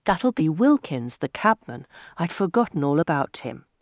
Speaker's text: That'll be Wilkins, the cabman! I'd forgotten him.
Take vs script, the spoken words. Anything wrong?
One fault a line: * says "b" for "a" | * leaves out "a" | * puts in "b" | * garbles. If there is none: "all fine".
* puts in "all about"